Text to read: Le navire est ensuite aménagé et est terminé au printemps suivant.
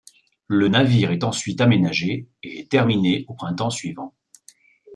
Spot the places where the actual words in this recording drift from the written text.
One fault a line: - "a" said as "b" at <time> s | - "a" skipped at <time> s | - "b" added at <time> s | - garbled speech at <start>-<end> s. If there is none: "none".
none